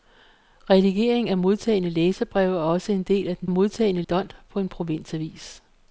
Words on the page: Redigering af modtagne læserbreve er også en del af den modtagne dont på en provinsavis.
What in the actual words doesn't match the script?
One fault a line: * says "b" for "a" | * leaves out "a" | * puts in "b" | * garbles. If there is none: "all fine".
all fine